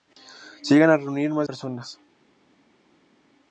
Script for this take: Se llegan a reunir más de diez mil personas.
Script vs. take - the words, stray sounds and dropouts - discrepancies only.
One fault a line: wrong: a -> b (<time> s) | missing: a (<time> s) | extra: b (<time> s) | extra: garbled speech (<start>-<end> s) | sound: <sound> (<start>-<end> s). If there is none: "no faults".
missing: de diez mil (1.5 s)